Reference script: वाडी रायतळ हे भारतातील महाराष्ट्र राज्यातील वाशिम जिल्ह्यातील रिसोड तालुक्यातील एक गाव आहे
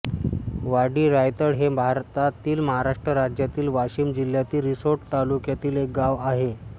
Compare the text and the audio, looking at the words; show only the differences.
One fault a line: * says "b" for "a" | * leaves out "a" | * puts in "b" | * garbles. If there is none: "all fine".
all fine